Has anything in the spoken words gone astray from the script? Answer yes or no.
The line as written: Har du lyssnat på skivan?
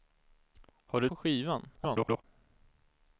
yes